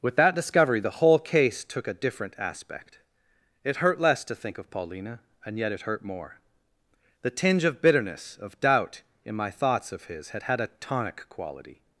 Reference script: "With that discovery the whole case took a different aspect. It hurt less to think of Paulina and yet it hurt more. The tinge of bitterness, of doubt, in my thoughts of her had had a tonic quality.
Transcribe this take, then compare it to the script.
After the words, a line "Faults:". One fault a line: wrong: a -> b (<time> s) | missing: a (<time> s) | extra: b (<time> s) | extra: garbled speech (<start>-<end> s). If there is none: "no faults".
"With that discovery the whole case took a different aspect. It hurt less to think of Paulina and yet it hurt more. The tinge of bitterness, of doubt, in my thoughts of his had had a tonic quality.
Faults:
wrong: her -> his (10.1 s)